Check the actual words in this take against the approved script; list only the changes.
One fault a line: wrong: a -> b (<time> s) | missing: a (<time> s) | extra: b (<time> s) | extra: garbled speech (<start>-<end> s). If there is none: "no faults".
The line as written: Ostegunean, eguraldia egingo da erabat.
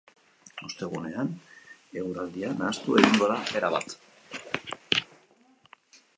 extra: nahastu (2.6 s)